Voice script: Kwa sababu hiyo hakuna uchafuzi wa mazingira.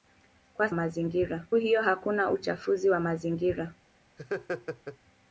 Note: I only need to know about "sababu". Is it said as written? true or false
false